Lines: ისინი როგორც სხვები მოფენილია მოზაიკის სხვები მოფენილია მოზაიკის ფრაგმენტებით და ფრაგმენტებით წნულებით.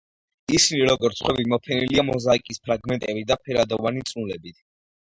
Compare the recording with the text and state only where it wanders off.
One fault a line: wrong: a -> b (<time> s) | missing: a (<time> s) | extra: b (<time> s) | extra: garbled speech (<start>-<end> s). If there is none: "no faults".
missing: სხვები მოფენილია მოზაიკის (2.6 s)
wrong: ფრაგმენტებით -> ფერადოვანი (3.5 s)